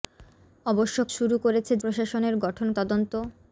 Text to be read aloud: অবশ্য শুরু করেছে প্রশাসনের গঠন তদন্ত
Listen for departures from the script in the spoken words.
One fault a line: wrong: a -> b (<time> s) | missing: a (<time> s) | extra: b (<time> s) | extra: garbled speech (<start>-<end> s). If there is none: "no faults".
no faults